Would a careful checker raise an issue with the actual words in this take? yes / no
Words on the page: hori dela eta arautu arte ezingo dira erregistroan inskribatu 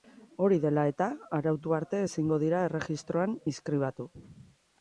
no